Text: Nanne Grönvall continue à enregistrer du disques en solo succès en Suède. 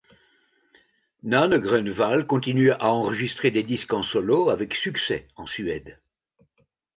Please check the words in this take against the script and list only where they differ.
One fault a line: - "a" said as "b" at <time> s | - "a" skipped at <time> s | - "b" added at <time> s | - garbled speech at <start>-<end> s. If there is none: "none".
- "du" said as "des" at 3.5 s
- "avec" added at 4.5 s